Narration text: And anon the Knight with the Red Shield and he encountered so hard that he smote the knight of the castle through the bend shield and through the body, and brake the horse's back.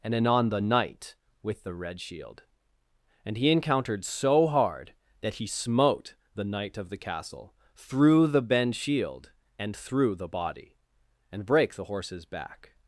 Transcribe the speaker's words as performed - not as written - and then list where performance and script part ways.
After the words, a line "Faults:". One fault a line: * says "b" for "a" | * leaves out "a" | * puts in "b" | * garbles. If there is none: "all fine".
And anon the Knight with the Red Shield and he encountered so hard that he smote the knight of the castle through the bend shield and through the body, and brake the horse's back.
Faults:
all fine